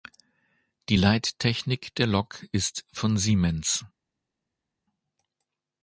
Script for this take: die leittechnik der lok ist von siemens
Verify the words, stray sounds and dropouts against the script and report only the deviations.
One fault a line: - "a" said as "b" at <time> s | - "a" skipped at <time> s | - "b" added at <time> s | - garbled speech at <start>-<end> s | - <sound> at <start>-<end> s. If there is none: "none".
none